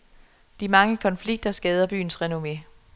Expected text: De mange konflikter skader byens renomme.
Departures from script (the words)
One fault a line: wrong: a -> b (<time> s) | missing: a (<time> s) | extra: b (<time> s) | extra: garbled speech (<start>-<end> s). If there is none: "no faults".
no faults